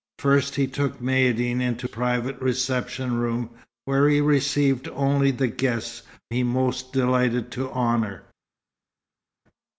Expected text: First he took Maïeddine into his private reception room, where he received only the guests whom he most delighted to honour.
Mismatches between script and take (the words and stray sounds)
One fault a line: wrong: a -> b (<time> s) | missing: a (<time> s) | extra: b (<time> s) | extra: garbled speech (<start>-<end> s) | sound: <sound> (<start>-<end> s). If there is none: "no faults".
missing: his (1.9 s)
missing: whom (6.0 s)